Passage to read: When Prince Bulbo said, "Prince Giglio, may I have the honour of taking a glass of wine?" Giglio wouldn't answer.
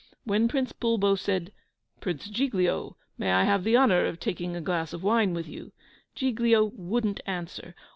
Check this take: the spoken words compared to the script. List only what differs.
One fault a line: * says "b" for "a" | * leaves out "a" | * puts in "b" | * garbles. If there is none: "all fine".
* puts in "with you"